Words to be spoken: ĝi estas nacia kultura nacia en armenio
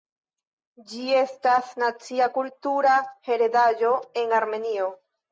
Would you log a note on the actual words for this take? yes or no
yes